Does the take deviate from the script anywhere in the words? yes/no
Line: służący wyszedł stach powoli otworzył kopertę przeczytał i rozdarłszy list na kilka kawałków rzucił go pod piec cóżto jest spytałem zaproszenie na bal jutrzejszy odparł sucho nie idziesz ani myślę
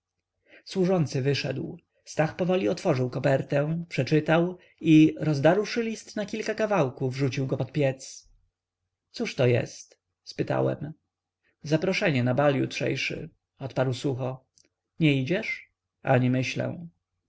no